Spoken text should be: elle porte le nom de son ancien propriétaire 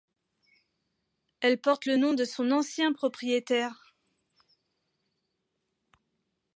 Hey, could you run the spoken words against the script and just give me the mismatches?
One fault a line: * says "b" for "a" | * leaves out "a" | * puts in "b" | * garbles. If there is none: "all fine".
all fine